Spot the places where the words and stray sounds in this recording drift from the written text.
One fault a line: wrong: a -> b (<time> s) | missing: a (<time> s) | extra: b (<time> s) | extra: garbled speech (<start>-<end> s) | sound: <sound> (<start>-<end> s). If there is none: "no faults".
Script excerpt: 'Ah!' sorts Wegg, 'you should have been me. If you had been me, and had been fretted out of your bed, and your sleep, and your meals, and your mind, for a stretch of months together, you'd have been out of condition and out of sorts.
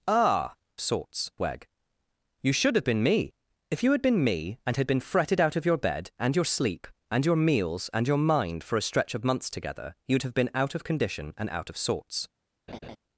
sound: laugh (12.7-13.0 s)